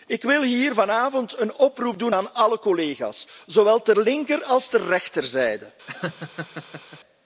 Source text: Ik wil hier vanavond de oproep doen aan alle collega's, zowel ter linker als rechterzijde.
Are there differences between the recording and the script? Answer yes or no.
yes